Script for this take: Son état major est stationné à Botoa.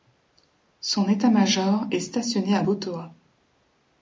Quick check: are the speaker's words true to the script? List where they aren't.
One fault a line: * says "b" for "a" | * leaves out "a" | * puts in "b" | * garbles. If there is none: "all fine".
all fine